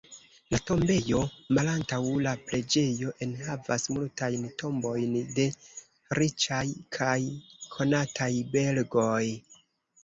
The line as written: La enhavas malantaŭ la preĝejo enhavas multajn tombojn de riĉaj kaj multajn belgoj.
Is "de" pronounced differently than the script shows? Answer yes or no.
no